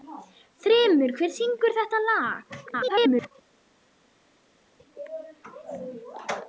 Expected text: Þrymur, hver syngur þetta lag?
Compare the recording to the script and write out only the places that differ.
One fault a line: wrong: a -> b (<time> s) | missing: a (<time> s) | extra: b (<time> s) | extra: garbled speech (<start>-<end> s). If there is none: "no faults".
extra: garbled speech (2.7-3.3 s)